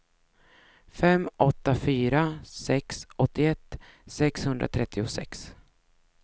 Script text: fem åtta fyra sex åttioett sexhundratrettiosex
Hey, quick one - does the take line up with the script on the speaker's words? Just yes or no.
yes